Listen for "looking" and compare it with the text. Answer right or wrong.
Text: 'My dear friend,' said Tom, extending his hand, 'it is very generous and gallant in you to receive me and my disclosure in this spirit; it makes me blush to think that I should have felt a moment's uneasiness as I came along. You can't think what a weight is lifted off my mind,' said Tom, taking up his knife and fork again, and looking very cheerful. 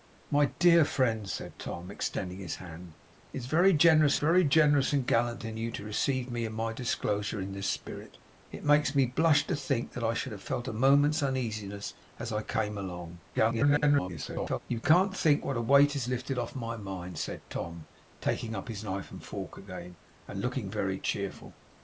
right